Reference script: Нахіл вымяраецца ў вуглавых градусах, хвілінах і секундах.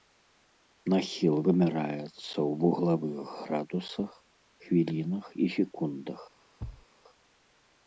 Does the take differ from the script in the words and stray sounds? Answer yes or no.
yes